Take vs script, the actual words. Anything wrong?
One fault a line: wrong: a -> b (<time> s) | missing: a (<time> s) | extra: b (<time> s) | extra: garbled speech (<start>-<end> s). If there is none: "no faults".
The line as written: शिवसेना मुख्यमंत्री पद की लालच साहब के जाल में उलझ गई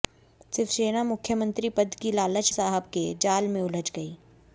no faults